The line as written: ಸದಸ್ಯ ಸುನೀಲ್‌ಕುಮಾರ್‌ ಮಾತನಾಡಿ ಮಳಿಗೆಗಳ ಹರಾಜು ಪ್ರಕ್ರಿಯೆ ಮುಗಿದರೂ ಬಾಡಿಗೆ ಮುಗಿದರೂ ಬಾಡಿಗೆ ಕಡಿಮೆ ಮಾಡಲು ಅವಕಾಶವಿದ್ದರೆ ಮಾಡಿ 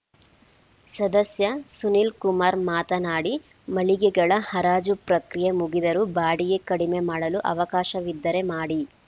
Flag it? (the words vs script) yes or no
yes